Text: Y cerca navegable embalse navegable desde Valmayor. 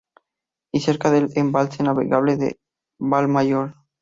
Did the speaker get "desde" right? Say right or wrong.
wrong